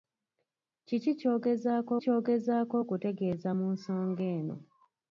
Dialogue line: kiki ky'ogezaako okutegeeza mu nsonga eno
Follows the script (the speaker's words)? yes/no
no